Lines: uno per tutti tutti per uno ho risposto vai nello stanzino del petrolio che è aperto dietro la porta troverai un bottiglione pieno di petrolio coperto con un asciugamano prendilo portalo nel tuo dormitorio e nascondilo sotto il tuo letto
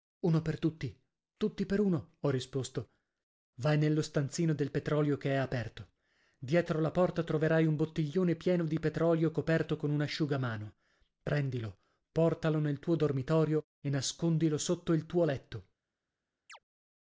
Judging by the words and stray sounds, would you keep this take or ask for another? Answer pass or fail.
fail